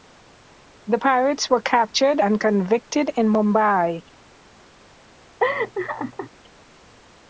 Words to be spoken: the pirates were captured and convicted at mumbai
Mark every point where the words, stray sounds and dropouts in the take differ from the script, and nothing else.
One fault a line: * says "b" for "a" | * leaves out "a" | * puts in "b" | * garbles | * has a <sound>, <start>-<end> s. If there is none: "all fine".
* says "in" for "at"
* has a laugh, 5.4-6.3 s